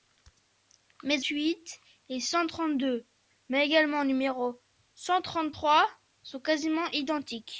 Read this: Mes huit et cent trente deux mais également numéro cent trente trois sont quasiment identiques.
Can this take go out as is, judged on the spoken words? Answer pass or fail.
pass